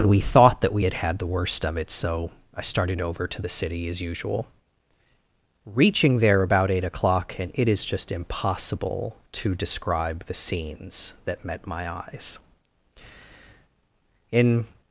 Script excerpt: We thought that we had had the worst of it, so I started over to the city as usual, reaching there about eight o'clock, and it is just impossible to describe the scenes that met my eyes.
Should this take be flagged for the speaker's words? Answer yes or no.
yes